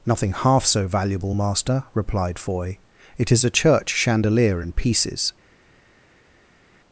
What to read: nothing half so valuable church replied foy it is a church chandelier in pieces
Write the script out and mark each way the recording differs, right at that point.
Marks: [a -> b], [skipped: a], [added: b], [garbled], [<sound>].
nothing half so valuable [church -> master] replied foy it is a church chandelier in pieces